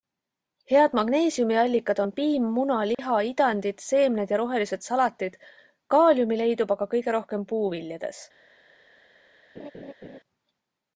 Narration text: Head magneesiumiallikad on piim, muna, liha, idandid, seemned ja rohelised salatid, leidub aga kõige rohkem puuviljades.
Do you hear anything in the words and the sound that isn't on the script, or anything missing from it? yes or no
yes